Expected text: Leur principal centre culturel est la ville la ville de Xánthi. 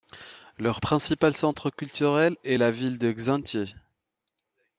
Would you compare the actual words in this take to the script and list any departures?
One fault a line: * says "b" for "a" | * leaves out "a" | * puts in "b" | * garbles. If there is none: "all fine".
* leaves out "la ville"